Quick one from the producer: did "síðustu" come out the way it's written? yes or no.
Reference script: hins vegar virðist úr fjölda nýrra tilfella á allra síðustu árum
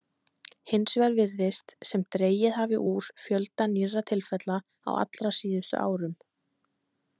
yes